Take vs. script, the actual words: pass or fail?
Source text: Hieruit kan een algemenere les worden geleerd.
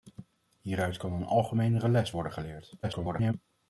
fail